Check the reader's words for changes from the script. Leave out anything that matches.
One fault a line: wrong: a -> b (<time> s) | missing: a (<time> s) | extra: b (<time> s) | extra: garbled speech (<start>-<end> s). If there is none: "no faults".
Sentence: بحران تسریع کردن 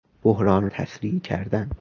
no faults